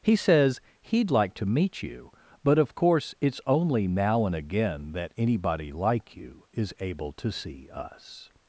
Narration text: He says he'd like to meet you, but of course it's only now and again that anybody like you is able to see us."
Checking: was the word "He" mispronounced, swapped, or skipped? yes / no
no